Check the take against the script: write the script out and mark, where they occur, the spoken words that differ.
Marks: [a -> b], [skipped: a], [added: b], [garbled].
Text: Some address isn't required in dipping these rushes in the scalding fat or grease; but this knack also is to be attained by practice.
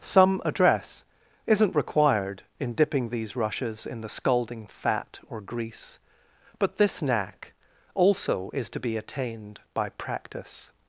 Some address isn't required in dipping these rushes in the scalding fat or grease; but this knack also is to be attained by practice.